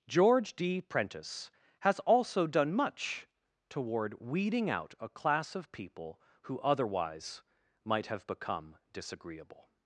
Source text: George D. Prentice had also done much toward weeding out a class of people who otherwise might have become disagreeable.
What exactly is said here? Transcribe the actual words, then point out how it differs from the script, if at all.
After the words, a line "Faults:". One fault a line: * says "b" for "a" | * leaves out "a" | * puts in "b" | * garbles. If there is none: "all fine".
George D. Prentice has also done much toward weeding out a class of people who otherwise might have become disagreeable.
Faults:
* says "has" for "had"